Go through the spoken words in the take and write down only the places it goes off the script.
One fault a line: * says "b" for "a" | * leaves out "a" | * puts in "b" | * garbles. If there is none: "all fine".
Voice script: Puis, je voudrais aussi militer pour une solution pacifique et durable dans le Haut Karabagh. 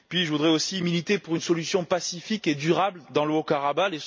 all fine